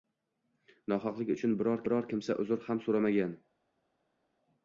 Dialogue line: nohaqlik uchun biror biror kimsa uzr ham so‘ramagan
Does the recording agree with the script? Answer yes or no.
yes